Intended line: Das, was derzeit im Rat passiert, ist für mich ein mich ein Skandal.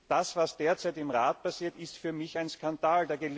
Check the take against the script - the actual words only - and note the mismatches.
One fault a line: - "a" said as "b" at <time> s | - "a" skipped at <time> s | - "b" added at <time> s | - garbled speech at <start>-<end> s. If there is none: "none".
- "mich ein" skipped at 2.5 s